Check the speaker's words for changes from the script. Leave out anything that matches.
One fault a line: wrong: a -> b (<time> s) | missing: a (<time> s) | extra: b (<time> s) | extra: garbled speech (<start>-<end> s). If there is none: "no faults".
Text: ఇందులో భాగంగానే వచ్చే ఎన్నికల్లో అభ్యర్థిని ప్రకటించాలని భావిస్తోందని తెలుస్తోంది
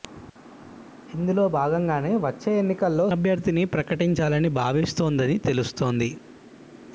no faults